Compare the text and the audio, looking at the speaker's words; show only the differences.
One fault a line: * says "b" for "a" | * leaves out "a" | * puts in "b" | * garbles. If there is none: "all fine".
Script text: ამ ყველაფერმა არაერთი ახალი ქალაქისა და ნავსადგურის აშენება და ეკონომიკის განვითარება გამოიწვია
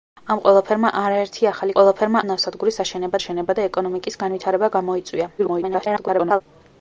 * says "ყველაფერმა" for "ქალაქისა"
* puts in "აშენება"
* garbles